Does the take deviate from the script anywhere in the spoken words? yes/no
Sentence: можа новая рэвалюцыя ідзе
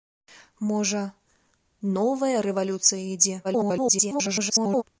yes